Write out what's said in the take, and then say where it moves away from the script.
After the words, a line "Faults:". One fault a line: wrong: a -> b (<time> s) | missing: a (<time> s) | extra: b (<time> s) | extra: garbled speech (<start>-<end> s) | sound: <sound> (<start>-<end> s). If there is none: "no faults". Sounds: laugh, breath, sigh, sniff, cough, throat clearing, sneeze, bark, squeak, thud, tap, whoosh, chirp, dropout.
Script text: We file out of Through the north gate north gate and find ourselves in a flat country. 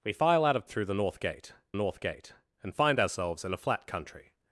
We file out of Through the north gate north gate and find ourselves in a flat country.
Faults:
no faults